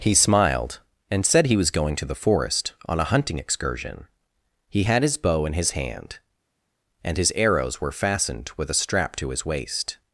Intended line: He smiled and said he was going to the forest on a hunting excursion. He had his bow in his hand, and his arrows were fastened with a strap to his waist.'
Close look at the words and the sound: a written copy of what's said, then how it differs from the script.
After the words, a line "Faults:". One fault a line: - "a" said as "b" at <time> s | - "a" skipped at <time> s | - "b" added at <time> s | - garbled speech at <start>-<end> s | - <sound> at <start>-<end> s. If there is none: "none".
He smiled and said he was going to the forest on a hunting excursion. He had his bow in his hand, and his arrows were fastened with a strap to his waist.'
Faults:
none